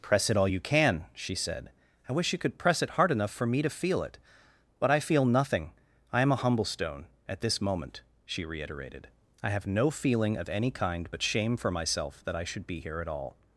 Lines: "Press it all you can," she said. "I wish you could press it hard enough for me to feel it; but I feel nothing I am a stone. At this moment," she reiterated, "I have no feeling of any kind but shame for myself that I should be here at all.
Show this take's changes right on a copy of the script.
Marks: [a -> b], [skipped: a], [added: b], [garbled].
"Press it all you can," she said. "I wish you could press it hard enough for me to feel it; but I feel nothing I am a [added: humble] stone. At this moment," she reiterated, "I have no feeling of any kind but shame for myself that I should be here at all.